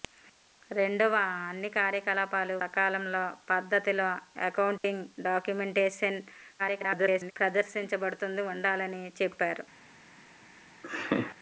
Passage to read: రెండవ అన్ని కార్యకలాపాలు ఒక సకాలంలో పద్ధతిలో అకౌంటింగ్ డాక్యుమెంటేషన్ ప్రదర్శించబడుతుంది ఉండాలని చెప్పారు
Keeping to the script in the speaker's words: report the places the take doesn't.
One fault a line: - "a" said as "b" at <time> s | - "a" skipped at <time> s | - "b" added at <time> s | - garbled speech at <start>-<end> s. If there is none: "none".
- "ఒక" skipped at 2.5 s
- garbled speech at 6.6-7.3 s